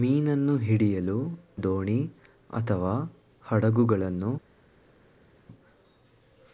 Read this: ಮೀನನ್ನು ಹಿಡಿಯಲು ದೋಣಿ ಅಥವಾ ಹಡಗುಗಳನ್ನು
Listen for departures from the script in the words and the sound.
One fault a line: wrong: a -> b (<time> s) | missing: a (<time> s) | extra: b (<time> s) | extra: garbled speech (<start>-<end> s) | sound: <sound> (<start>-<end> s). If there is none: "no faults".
no faults